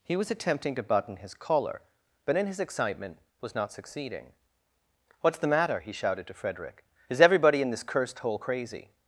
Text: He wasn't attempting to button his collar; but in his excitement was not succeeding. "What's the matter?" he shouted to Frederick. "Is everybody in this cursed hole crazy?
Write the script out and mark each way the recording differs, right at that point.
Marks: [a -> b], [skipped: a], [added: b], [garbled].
He [wasn't -> was] attempting to button his collar; but in his excitement was not succeeding. "What's the matter?" he shouted to Frederick. "Is everybody in this cursed hole crazy?